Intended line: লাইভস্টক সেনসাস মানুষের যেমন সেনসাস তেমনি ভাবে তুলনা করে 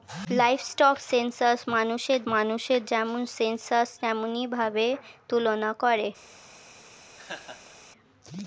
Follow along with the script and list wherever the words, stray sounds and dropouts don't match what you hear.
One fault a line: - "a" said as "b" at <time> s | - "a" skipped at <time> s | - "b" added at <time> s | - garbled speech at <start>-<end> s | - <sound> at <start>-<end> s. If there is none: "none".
- "মানুষের" added at 2.3 s
- laugh at 7.2-7.8 s